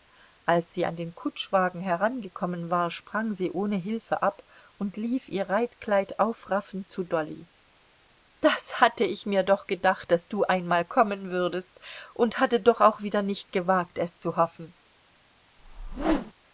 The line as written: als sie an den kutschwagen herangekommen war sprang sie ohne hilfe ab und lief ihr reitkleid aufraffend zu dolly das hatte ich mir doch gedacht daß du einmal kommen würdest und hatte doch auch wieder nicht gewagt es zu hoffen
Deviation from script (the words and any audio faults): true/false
true